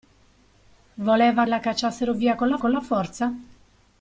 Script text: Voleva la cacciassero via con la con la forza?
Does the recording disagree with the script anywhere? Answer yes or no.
no